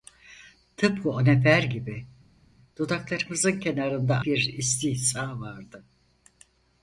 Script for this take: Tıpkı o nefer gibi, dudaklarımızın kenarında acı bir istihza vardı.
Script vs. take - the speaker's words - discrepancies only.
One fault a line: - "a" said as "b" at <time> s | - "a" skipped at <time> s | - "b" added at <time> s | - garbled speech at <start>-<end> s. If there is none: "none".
- "acı" skipped at 4.2 s